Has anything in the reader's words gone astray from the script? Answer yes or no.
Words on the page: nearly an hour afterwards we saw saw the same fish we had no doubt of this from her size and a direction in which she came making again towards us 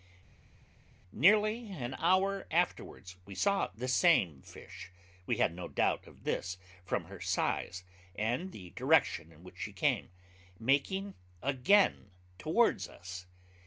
yes